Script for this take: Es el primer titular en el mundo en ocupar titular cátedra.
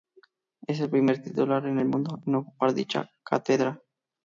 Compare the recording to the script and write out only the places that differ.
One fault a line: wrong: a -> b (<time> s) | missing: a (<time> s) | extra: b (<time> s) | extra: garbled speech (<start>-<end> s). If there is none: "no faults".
wrong: titular -> dicha (2.7 s)